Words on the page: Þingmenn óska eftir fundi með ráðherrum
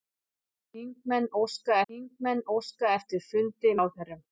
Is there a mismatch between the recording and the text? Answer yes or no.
yes